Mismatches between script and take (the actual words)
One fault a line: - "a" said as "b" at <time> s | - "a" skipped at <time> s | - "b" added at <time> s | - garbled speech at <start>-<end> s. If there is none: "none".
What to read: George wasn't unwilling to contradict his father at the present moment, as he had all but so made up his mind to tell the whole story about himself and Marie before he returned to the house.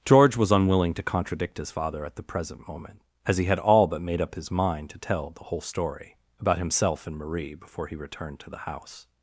- "wasn't" said as "was" at 0.3 s
- "so" skipped at 4.0 s